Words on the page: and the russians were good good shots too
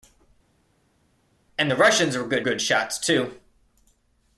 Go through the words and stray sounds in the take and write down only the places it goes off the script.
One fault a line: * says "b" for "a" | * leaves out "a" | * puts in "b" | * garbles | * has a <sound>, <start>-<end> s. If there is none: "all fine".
all fine